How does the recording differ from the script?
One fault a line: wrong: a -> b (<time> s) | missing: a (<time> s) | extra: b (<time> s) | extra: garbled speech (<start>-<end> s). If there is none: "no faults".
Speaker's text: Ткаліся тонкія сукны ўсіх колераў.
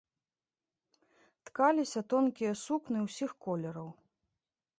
no faults